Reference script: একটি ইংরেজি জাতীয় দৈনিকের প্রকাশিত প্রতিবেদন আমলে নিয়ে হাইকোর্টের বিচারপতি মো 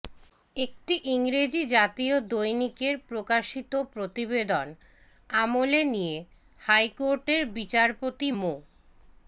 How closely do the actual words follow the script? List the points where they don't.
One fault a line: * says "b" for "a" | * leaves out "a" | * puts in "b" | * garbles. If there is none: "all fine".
all fine